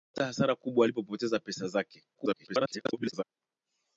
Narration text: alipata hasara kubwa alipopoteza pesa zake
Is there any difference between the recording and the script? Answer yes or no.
yes